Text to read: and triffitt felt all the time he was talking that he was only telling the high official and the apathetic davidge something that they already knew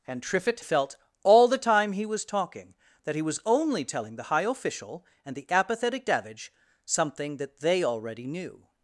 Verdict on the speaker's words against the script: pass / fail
pass